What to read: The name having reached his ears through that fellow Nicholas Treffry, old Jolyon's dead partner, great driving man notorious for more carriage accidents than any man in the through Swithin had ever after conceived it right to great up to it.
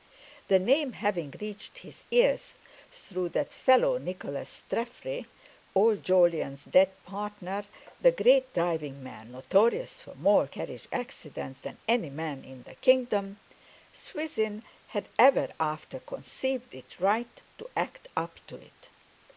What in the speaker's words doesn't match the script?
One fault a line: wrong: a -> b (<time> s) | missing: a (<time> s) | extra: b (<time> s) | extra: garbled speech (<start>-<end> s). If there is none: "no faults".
extra: the (8.0 s)
wrong: through -> kingdom (12.8 s)
wrong: great -> act (17.7 s)